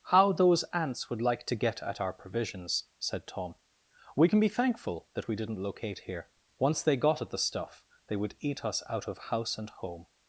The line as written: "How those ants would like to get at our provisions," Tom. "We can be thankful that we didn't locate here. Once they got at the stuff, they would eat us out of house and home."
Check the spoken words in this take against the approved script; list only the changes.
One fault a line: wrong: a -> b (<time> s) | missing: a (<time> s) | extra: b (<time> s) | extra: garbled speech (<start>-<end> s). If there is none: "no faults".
extra: said (3.0 s)